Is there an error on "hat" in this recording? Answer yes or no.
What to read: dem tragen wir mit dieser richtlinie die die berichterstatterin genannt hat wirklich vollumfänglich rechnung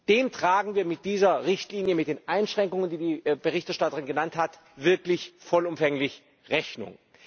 no